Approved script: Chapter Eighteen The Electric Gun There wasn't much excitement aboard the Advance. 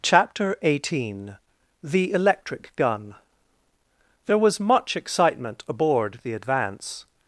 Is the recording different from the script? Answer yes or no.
yes